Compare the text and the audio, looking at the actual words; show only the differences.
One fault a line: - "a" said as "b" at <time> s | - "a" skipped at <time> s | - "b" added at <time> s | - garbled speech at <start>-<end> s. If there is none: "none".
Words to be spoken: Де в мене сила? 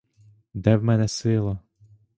none